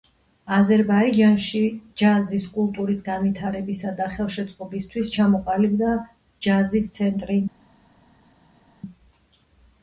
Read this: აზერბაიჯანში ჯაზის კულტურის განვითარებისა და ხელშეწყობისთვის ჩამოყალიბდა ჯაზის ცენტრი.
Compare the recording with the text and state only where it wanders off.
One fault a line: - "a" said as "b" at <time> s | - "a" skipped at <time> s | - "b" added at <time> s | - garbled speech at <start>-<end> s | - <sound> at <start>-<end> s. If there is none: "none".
none